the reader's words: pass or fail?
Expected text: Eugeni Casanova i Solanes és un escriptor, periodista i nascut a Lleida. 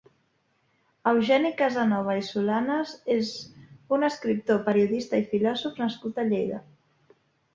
fail